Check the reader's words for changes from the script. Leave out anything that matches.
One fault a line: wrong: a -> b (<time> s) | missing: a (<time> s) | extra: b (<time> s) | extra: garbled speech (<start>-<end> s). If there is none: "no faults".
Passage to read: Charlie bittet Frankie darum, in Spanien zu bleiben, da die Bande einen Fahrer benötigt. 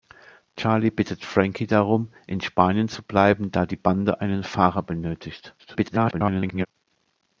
extra: garbled speech (5.6-6.7 s)